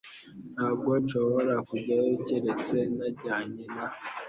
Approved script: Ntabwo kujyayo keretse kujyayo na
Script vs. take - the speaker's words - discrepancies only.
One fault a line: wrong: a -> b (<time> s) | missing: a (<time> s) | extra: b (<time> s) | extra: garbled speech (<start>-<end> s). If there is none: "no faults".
extra: nshobora (1.0 s)
wrong: kujyayo -> najyanye (3.0 s)